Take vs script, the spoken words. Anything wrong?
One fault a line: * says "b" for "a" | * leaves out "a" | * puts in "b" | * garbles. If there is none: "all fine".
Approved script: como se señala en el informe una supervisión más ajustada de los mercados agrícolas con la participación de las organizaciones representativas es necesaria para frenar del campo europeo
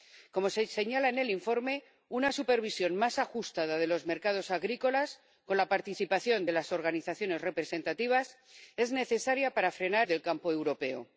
all fine